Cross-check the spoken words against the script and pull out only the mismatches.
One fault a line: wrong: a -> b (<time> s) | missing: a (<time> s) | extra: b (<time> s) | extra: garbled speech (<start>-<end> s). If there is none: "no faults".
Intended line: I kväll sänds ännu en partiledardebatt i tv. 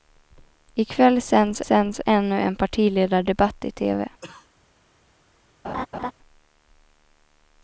extra: sänds (1.6 s)